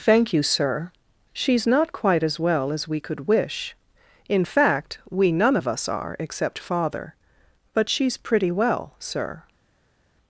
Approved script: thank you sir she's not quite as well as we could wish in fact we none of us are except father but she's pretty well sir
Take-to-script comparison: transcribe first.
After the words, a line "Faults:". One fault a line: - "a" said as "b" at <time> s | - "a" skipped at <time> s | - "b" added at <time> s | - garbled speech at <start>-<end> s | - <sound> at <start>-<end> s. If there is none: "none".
thank you sir she's not quite as well as we could wish in fact we none of us are except father but she's pretty well sir
Faults:
none